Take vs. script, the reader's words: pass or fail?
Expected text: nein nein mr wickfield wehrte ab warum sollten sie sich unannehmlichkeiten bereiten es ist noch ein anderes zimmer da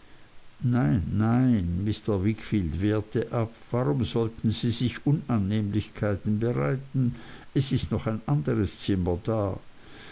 pass